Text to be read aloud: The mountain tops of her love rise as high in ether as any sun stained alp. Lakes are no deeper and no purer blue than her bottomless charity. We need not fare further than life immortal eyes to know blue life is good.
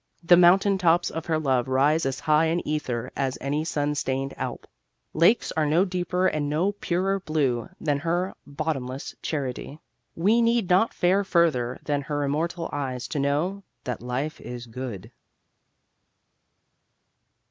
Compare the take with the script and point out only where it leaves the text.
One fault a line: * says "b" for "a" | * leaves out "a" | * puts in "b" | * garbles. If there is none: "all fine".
* says "her" for "life"
* says "that" for "blue"